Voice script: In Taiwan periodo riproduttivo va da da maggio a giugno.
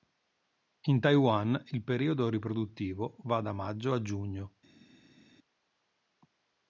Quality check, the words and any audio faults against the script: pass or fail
fail